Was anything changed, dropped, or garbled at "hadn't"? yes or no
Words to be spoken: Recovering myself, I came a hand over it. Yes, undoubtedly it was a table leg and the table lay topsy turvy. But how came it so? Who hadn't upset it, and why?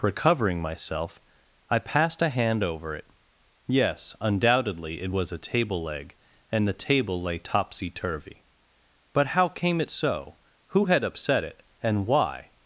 yes